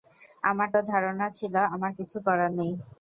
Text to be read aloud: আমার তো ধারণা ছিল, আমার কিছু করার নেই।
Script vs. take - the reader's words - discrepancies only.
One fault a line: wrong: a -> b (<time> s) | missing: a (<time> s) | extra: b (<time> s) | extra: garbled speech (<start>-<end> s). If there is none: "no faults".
no faults